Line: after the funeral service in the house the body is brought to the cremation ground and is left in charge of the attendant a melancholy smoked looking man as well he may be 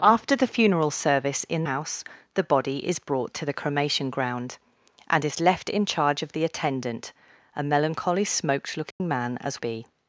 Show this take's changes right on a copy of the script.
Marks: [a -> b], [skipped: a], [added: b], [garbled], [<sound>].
after the funeral service in [skipped: the] house the body is brought to the cremation ground and is left in charge of the attendant a melancholy smoked looking [dropout] man as [skipped: well he may] be